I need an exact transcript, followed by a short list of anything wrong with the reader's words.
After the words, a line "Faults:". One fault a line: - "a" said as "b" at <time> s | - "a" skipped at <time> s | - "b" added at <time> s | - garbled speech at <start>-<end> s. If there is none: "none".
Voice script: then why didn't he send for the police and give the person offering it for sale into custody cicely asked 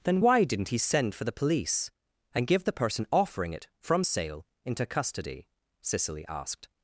then why didn't he send for the police and give the person offering it from sale into custody cicely asked
Faults:
- "for" said as "from" at 3.8 s